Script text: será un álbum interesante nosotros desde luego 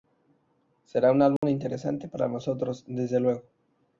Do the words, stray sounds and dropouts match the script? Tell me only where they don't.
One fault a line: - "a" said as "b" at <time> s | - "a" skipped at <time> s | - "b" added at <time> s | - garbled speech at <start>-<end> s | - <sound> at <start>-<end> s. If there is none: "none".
- dropout at 1.4-1.4 s
- "para" added at 2.1 s